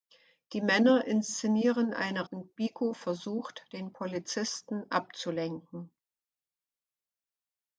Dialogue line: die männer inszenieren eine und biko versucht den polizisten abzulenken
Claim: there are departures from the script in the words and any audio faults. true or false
false